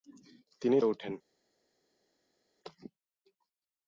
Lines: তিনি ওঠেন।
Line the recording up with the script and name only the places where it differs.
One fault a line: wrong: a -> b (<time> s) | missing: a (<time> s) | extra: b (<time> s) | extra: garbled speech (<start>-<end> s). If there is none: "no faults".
no faults